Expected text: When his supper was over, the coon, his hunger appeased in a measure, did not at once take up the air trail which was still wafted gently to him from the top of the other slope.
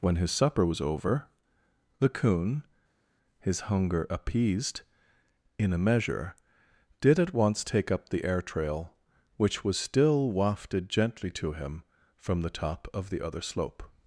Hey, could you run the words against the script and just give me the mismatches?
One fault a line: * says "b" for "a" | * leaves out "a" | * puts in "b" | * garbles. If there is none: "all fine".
* leaves out "not"